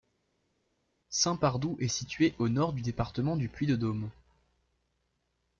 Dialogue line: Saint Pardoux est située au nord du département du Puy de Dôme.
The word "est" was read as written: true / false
true